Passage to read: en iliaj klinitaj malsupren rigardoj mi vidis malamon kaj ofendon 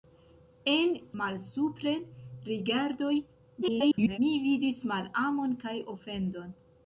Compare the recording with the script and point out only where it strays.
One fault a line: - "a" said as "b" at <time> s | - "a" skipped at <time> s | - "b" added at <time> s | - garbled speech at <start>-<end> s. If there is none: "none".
- "iliaj klinitaj" skipped at 0.9 s
- garbled speech at 3.6-4.2 s